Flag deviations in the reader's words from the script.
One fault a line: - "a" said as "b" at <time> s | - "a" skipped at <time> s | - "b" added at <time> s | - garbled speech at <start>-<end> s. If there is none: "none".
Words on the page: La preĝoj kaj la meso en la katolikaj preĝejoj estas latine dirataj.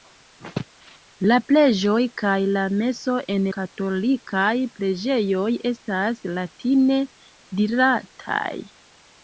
- "la" skipped at 3.5 s